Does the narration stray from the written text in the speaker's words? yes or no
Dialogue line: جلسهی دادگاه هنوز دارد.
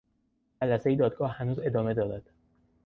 yes